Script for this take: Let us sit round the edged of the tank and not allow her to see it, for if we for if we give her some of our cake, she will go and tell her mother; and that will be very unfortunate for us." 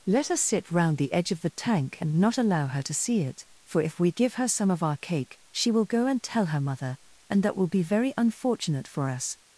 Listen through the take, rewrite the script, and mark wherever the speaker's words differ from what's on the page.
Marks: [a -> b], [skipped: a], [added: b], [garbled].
Let us sit round the [edged -> edge] of the tank and not allow her to see it, for if we [skipped: for if we] give her some of our cake, she will go and tell her mother; and that will be very unfortunate for us."